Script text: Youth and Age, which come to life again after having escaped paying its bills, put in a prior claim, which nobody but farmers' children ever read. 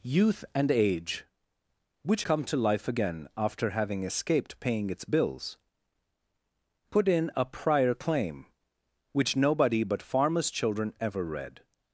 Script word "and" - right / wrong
right